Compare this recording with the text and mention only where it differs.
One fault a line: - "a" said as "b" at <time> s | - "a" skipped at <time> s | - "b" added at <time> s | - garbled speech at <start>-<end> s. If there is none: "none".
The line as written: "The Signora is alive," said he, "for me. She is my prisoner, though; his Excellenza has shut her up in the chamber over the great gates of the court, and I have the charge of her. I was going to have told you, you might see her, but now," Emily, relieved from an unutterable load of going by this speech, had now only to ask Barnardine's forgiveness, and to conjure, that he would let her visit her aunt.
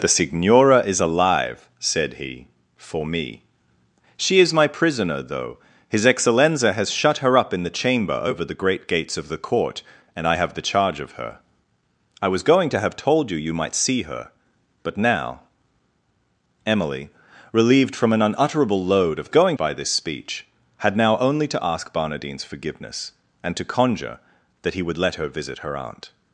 none